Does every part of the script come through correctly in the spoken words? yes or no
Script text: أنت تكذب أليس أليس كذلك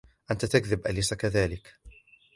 no